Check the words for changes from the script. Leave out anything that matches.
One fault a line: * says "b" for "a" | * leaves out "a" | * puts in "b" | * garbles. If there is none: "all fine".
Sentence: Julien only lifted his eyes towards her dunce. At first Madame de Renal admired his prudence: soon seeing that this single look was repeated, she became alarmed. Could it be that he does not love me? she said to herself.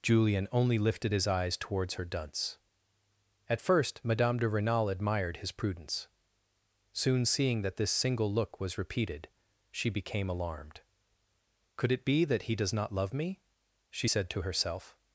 all fine